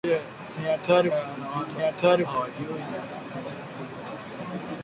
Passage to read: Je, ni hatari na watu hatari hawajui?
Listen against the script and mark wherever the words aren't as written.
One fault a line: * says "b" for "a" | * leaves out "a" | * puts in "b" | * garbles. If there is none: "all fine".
all fine